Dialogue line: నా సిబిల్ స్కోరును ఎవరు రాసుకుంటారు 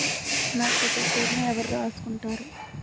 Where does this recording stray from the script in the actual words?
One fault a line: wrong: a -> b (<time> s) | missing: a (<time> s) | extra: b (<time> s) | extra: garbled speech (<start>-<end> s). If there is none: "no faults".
no faults